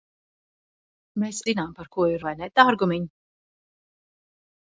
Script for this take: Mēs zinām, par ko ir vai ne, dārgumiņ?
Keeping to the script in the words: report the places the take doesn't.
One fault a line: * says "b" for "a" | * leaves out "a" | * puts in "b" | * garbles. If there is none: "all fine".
all fine